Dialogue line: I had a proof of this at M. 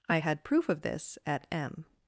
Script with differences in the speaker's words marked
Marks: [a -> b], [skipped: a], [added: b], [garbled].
I had [skipped: a] proof of this at M.